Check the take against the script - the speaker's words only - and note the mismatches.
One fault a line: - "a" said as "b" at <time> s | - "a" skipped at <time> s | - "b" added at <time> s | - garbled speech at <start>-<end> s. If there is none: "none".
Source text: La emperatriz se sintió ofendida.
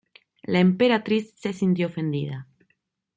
none